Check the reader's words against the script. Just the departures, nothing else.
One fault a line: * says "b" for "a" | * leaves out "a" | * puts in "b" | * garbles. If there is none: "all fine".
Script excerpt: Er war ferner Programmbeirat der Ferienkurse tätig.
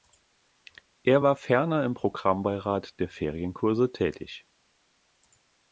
* puts in "im"